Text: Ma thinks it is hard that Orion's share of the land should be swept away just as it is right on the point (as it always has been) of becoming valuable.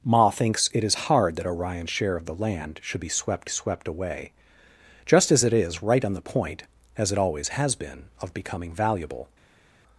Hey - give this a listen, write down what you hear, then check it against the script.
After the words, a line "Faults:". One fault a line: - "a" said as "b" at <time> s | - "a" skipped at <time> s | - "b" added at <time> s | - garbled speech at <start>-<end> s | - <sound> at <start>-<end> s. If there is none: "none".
Ma thinks it is hard that Orion's share of the land should be swept swept away just as it is right on the point (as it always has been) of becoming valuable.
Faults:
- "swept" added at 3.5 s